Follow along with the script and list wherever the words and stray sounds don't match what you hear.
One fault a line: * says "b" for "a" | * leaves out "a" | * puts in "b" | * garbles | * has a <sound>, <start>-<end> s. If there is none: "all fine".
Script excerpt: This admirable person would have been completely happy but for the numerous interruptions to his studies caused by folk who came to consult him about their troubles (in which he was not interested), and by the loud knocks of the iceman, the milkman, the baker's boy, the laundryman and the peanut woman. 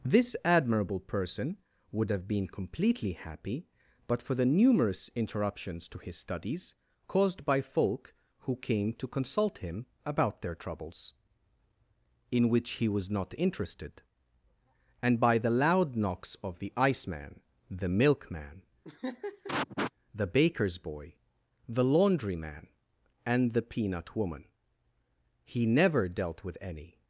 * has a laugh, 18.8-19.9 s
* puts in "He never dealt with any"